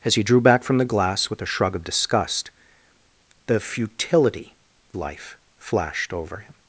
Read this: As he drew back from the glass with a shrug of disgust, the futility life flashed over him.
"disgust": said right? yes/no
yes